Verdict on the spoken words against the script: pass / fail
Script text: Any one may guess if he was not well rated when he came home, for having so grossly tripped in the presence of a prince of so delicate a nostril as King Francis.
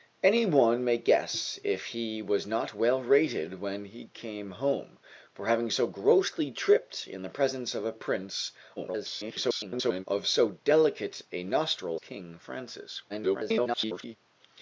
fail